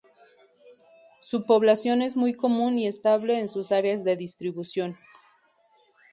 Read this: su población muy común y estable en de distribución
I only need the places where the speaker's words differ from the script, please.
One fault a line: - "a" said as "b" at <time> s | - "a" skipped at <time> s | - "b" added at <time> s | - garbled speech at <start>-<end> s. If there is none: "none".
- "es" added at 2.0 s
- "sus áreas" added at 3.5 s